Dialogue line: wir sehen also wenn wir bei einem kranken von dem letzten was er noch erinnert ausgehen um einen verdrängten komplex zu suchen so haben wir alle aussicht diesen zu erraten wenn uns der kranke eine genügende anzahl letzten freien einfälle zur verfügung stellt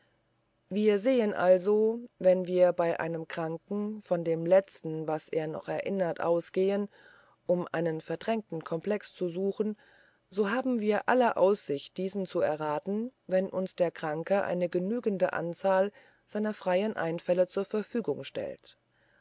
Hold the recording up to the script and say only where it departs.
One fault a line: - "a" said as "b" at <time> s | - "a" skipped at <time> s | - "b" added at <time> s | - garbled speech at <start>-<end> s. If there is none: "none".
- "letzten" said as "seiner" at 16.3 s